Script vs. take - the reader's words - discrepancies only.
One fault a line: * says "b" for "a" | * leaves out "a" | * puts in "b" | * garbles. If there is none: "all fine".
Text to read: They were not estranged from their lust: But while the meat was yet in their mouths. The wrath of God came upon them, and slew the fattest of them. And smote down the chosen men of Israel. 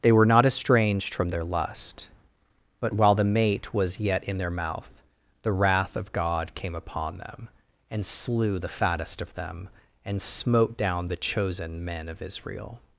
* says "mate" for "meat"
* says "mouth" for "mouths"